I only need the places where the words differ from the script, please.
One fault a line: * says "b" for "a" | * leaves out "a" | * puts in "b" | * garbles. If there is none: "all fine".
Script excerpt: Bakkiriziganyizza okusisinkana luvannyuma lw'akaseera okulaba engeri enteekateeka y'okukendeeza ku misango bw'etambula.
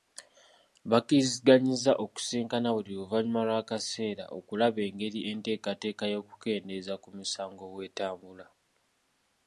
* puts in "buli"